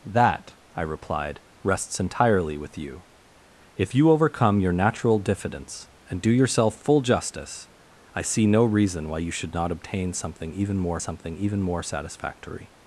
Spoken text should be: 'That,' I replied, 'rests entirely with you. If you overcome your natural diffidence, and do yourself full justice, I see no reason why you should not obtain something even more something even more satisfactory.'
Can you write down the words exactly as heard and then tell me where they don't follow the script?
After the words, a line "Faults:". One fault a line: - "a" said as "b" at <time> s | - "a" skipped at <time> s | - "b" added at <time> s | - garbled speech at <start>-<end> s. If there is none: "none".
'That,' I replied, 'rests entirely with you. If you overcome your natural diffidence, and do yourself full justice, I see no reason why you should not obtain something even more something even more satisfactory.'
Faults:
none